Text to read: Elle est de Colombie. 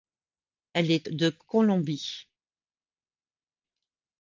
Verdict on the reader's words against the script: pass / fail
pass